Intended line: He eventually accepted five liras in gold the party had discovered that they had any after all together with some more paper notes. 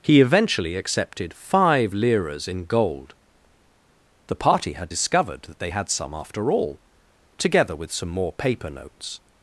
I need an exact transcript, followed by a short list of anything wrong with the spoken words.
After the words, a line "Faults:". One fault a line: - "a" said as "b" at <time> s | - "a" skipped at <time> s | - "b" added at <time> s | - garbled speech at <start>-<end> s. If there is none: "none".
He eventually accepted five liras in gold the party had discovered that they had some after all together with some more paper notes.
Faults:
- "any" said as "some" at 5.9 s